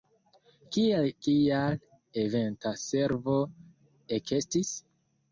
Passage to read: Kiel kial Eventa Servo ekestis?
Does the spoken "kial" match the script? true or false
true